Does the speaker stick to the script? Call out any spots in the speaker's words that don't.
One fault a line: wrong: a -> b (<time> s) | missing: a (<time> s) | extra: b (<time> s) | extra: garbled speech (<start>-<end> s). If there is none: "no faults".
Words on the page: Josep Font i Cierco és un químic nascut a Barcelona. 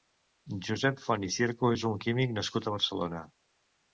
no faults